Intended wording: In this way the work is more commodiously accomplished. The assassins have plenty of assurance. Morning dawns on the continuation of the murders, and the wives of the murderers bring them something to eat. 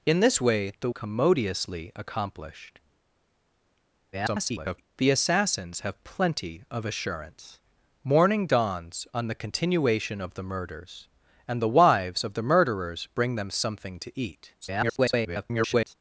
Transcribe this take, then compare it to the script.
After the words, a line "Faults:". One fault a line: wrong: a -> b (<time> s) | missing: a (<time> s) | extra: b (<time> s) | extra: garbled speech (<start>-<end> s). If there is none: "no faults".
In this way the commodiously accomplished. [garbled] The assassins have plenty of assurance. Morning dawns on the continuation of the murders, and the wives of the murderers bring them something to eat. [garbled]
Faults:
missing: work is more (0.9 s)
extra: garbled speech (4.1-4.9 s)
extra: garbled speech (14.6-15.9 s)